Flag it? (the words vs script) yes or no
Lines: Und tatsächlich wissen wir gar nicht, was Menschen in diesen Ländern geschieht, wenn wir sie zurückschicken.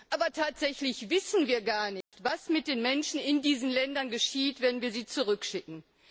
yes